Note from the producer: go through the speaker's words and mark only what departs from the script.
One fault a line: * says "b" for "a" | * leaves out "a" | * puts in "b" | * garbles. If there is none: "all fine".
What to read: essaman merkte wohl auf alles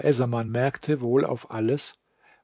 all fine